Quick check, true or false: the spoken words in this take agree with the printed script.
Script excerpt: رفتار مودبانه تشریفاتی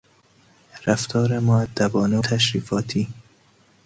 true